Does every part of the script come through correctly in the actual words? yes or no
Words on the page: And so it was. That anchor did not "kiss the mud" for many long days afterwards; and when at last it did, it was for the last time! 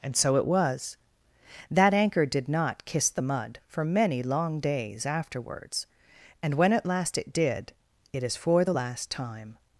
no